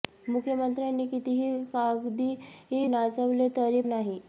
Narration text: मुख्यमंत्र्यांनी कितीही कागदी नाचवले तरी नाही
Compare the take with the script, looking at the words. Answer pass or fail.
pass